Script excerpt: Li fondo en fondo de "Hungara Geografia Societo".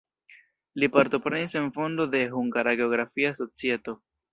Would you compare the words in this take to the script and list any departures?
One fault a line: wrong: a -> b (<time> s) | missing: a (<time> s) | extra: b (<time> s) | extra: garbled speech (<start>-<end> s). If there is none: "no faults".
wrong: fondo -> partoprenis (0.9 s)